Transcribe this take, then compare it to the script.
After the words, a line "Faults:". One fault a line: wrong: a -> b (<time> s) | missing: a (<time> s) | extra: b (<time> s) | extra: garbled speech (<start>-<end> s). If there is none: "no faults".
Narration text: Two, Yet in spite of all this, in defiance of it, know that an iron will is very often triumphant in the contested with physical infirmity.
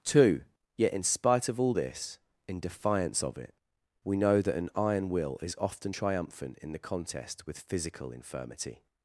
Two, Yet in spite of all this, in defiance of it, we know that an iron will is often triumphant in the contest with physical infirmity.
Faults:
extra: we (4.0 s)
missing: very (5.6 s)
wrong: contested -> contest (6.8 s)